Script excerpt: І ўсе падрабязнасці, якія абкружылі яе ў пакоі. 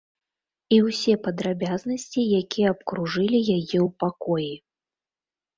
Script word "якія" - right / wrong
right